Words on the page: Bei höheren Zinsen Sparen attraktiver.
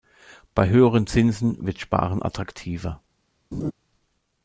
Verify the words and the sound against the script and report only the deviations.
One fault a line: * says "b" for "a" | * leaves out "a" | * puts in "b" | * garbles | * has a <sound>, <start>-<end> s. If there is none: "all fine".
* puts in "wird"
* has a laugh, 3.5-3.7 s